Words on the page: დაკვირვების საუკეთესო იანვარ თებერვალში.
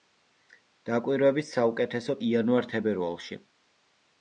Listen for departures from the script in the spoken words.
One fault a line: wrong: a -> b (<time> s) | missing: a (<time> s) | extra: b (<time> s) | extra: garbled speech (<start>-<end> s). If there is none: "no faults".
no faults